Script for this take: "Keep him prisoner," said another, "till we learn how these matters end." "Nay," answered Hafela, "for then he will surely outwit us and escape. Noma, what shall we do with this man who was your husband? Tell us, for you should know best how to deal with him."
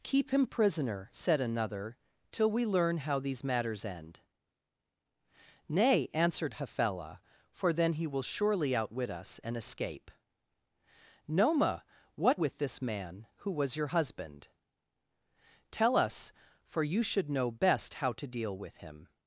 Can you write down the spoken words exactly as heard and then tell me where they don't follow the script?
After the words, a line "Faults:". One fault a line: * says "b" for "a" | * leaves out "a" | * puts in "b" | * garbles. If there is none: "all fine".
"Keep him prisoner," said another, "till we learn how these matters end." "Nay," answered Hafela, "for then he will surely outwit us and escape. Noma, what with this man who was your husband? Tell us, for you should know best how to deal with him."
Faults:
* leaves out "shall we do"